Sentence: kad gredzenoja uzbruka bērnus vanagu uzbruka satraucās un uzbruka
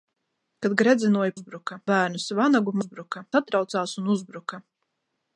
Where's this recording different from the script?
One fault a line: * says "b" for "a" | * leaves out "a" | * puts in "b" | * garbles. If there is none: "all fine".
all fine